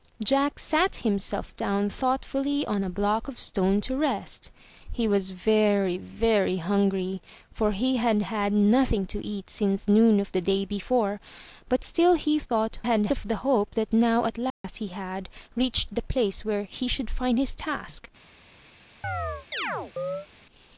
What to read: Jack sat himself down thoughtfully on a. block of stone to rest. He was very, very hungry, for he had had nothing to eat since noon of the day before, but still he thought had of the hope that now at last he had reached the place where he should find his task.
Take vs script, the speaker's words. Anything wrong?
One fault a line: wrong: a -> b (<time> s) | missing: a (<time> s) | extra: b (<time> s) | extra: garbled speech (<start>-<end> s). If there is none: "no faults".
no faults